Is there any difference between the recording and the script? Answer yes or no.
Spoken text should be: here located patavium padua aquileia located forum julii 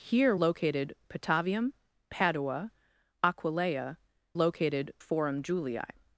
no